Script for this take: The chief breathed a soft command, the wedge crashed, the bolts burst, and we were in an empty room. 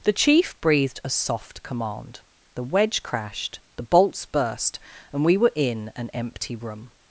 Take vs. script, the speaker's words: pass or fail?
pass